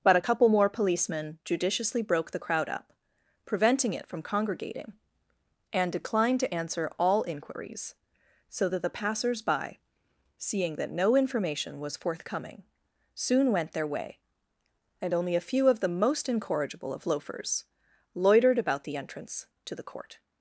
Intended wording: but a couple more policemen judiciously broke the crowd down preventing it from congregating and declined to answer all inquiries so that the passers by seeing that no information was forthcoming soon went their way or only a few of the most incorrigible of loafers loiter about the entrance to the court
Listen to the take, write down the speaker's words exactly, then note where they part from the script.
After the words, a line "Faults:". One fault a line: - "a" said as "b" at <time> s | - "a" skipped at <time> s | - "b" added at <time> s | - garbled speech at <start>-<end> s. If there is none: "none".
but a couple more policemen judiciously broke the crowd up preventing it from congregating and declined to answer all inquiries so that the passers by seeing that no information was forthcoming soon went their way and only a few of the most incorrigible of loafers loitered about the entrance to the court
Faults:
- "down" said as "up" at 2.7 s
- "or" said as "and" at 15.0 s
- "loiter" said as "loitered" at 18.1 s